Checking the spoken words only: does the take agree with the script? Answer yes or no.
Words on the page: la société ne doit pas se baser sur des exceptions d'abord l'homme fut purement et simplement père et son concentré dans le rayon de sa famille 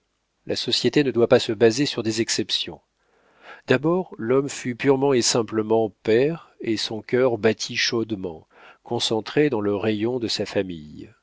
no